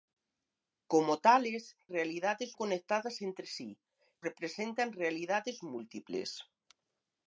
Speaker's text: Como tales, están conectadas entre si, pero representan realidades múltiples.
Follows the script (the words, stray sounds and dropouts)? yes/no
no